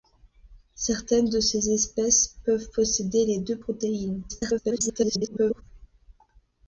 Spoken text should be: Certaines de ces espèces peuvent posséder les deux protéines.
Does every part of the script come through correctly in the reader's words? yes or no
no